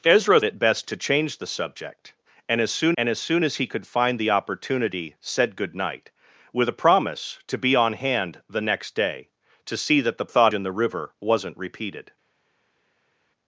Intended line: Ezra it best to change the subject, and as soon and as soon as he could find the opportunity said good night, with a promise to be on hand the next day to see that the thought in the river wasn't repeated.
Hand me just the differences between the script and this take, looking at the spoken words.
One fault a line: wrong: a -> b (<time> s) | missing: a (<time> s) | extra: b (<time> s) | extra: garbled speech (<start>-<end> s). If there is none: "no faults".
no faults